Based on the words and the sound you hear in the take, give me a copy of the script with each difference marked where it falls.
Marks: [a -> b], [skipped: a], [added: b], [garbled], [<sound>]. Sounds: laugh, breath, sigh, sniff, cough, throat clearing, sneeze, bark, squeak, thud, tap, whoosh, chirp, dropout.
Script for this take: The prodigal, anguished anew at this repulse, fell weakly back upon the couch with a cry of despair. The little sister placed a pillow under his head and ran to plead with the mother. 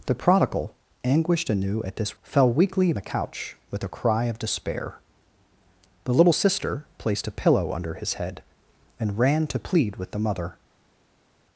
The prodigal, anguished anew at this [skipped: repulse,] fell weakly [skipped: back upon] the couch with a cry of despair. The little sister placed a pillow under his head and ran to plead with the mother.